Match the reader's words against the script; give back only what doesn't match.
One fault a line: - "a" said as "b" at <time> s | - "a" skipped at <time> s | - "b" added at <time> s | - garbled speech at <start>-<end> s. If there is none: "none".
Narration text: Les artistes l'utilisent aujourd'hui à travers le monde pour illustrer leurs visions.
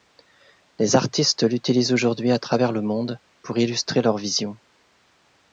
none